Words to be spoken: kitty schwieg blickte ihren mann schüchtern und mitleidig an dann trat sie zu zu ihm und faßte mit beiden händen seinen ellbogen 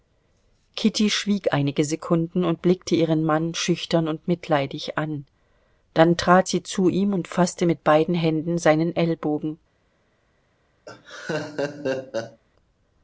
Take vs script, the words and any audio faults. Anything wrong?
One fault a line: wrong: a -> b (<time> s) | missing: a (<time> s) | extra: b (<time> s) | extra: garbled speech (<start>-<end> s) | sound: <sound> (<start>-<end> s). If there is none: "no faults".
extra: einige sekunden und (1.5 s)
missing: zu (6.9 s)
sound: laugh (10.9-12.4 s)